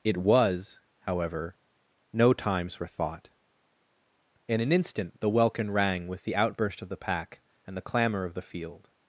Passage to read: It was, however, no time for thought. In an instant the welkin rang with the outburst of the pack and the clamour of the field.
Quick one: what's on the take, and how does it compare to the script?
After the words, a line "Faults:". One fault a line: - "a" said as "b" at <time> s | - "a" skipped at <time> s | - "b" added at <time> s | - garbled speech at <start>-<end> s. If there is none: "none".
It was, however, no times for thought. In an instant the welkin rang with the outburst of the pack and the clamour of the field.
Faults:
- "time" said as "times" at 2.3 s